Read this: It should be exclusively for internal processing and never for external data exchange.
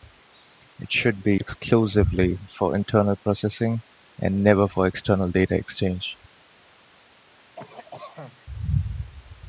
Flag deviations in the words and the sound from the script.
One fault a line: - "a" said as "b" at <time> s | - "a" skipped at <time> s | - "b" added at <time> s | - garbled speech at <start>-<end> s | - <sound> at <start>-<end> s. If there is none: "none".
- cough at 7.6-8.5 s